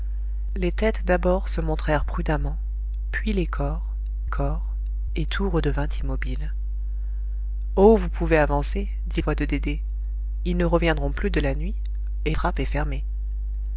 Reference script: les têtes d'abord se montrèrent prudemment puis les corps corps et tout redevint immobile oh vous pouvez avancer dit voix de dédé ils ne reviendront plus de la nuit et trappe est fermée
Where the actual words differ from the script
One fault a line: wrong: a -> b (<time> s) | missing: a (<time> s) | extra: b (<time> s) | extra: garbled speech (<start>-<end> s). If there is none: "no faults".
no faults